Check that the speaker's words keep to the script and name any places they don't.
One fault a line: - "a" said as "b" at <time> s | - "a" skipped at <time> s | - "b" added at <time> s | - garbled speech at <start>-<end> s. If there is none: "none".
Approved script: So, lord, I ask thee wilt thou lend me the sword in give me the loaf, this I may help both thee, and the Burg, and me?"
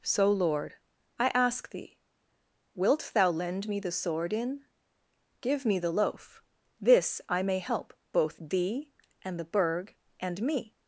none